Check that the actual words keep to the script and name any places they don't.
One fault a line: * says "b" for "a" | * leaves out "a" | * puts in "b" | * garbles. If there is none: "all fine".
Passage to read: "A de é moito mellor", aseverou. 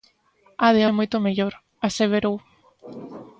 all fine